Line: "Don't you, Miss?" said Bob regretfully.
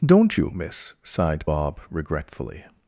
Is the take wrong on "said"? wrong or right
wrong